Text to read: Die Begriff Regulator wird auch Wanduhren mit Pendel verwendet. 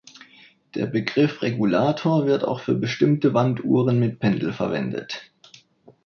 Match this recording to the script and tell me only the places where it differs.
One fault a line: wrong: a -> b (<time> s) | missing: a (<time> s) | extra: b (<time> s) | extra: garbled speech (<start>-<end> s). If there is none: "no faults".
wrong: Die -> Der (0.7 s)
extra: für bestimmte (2.6 s)